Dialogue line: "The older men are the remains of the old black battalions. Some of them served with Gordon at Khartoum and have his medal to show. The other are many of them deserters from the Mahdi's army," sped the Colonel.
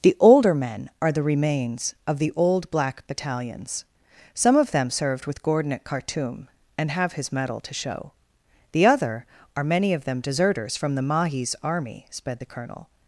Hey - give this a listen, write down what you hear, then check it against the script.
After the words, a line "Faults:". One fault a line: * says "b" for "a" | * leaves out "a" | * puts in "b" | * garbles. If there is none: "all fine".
"The older men are the remains of the old black battalions. Some of them served with Gordon at Khartoum and have his medal to show. The other are many of them deserters from the Mahdi's army," sped the Colonel.
Faults:
all fine